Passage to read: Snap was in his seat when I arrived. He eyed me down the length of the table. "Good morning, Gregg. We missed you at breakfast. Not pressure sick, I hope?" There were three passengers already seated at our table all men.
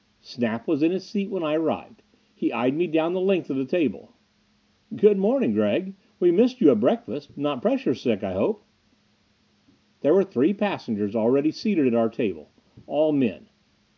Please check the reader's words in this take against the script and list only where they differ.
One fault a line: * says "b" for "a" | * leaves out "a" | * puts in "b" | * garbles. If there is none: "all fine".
all fine